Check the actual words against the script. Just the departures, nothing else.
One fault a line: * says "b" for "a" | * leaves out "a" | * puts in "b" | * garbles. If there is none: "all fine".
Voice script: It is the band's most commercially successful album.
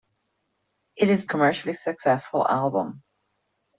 * leaves out "the band's most"